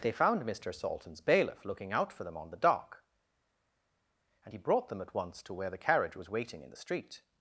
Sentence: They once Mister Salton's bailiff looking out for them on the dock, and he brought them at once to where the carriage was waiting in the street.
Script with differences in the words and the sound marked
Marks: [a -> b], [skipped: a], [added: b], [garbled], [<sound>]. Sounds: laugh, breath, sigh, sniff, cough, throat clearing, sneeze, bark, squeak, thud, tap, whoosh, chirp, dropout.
They [once -> found] Mister Salton's bailiff looking out for them on the dock, and he brought them at once to where the carriage was waiting in the street.